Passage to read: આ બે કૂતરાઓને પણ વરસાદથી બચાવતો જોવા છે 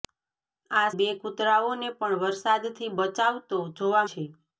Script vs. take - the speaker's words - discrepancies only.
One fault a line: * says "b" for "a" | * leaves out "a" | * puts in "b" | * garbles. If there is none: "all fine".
all fine